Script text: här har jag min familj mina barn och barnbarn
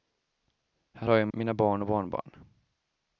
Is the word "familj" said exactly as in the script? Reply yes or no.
no